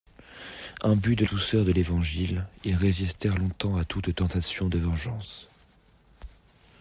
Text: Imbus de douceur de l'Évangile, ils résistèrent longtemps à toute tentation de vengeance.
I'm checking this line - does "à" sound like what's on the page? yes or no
yes